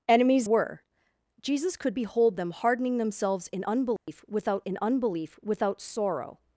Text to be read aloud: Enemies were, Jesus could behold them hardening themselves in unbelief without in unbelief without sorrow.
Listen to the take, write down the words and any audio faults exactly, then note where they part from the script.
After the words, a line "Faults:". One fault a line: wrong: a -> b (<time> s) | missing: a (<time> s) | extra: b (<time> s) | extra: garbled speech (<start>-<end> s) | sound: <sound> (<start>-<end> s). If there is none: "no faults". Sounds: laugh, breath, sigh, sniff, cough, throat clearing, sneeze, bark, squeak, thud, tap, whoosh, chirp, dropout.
Enemies were, Jesus could behold them hardening themselves in unbelief without in unbelief without sorrow.
Faults:
sound: dropout (4.0-4.1 s)